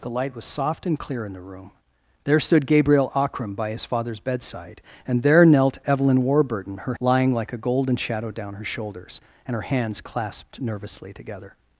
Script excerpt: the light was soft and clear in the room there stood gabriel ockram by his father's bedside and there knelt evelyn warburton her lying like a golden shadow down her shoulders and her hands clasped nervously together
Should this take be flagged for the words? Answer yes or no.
no